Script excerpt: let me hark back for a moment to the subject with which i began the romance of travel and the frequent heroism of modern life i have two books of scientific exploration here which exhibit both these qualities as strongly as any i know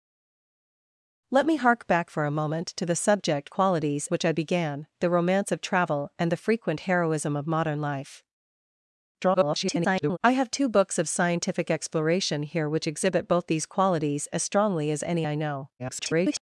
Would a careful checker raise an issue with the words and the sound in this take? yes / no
yes